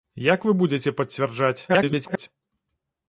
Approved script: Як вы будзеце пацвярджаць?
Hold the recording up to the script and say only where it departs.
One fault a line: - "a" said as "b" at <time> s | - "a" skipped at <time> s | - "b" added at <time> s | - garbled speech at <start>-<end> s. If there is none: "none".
- garbled speech at 1.7-2.3 s